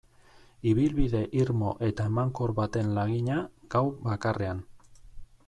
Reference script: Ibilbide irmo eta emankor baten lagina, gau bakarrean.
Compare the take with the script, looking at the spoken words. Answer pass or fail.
pass